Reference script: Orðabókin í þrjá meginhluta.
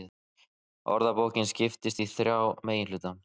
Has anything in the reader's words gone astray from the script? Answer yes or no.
yes